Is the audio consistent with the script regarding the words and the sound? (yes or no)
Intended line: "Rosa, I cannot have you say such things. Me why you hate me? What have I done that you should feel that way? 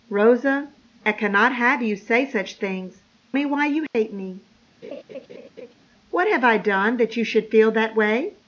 no